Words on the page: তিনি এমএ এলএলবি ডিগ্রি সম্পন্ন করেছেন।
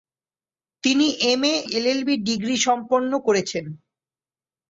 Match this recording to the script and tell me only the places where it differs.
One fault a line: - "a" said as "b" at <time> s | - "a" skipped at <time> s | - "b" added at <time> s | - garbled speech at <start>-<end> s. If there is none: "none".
none